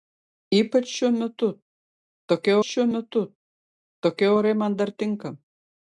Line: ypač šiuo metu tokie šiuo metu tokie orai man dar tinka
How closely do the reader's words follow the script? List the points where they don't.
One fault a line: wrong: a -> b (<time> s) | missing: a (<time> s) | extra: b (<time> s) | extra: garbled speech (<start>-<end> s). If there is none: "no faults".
no faults